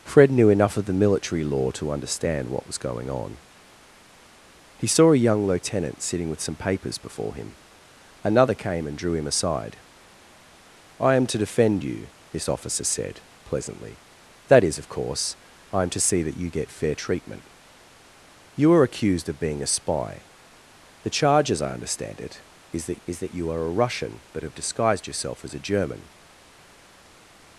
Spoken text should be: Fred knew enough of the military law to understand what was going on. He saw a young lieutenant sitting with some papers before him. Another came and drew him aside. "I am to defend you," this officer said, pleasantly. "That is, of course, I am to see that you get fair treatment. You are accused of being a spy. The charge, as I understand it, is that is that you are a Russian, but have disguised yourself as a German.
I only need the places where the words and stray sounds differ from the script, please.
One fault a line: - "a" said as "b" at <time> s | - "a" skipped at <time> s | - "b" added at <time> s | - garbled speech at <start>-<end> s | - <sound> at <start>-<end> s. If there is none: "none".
none